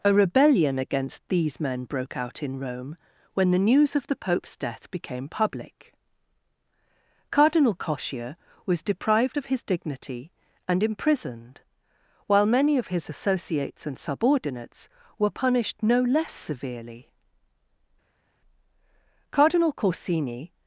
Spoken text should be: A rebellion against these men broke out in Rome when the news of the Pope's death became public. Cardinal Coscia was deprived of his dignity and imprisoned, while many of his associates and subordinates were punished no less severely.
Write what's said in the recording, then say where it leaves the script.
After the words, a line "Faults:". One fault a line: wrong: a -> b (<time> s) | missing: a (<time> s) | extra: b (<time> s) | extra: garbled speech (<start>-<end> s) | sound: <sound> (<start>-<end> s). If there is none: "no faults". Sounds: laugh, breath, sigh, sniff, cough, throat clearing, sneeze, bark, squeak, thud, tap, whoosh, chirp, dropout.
A rebellion against these men broke out in Rome when the news of the Pope's death became public. Cardinal Coscia was deprived of his dignity and imprisoned, while many of his associates and subordinates were punished no less severely. Cardinal Corsini
Faults:
extra: Cardinal Corsini (19.3 s)